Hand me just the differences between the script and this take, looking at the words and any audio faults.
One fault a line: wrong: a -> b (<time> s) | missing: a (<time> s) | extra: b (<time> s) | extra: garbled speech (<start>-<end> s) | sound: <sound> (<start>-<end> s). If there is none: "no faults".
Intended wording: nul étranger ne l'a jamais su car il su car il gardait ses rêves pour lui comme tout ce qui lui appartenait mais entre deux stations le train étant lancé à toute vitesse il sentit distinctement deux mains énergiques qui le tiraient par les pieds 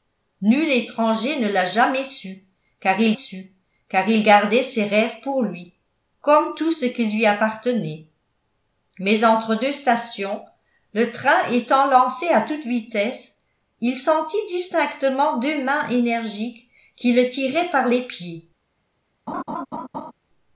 sound: laugh (19.3-20.1 s)